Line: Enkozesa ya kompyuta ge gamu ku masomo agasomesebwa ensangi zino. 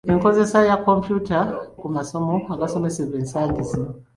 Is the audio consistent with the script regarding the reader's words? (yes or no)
no